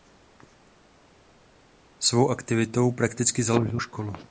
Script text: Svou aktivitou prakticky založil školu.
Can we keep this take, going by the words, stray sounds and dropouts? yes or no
yes